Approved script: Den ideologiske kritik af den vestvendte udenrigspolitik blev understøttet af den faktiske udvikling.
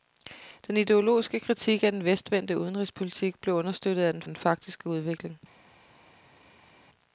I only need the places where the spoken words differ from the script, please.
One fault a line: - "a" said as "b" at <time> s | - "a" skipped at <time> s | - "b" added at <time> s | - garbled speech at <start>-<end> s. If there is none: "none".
- "den" added at 4.3 s